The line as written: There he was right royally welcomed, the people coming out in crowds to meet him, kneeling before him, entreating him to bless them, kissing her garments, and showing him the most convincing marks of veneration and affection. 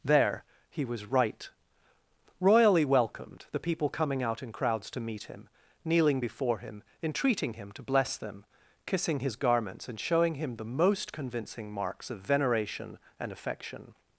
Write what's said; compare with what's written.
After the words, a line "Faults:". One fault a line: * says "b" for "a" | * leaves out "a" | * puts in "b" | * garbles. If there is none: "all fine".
There he was right royally welcomed, the people coming out in crowds to meet him, kneeling before him, entreating him to bless them, kissing his garments, and showing him the most convincing marks of veneration and affection.
Faults:
* says "his" for "her"